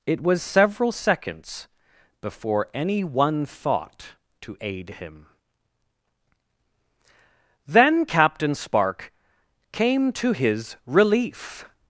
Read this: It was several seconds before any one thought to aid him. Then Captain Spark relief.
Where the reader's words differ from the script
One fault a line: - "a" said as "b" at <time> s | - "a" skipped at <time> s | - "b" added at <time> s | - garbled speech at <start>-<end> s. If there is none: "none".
- "came to his" added at 9.7 s